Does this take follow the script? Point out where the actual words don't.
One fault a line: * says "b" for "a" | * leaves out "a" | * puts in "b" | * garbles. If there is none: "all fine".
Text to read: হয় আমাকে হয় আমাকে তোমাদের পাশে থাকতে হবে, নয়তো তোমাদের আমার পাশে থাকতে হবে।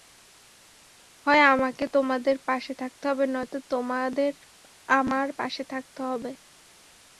* leaves out "হয় আমাকে"